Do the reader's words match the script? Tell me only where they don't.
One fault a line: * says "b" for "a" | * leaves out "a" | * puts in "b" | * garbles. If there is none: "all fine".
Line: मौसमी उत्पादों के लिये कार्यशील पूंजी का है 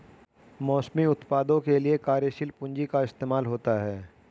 * puts in "इस्तेमाल होता"